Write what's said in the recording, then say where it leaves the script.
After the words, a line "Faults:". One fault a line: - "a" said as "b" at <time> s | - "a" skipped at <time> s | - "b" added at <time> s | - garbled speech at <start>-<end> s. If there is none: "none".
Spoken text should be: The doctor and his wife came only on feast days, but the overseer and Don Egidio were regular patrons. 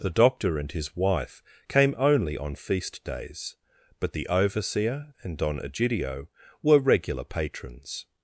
The doctor and his wife came only on feast days, but the overseer and Don Egidio were regular patrons.
Faults:
none